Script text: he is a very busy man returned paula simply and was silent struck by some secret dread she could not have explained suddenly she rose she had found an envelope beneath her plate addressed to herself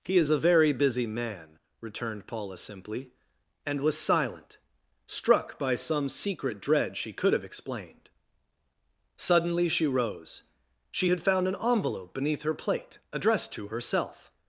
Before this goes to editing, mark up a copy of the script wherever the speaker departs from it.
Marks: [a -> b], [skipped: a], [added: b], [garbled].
he is a very busy man returned paula simply and was silent struck by some secret dread she could [skipped: not] have explained suddenly she rose she had found an envelope beneath her plate addressed to herself